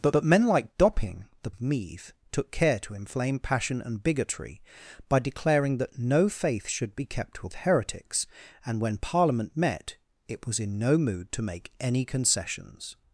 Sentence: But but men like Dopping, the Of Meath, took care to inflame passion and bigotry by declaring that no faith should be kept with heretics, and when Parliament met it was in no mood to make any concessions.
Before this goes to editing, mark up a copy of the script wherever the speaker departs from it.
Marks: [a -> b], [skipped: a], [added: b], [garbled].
But but men like Dopping, the Of Meath, took care to inflame passion and bigotry by declaring that no faith should be kept with heretics, and when Parliament met it was in no mood to make any concessions.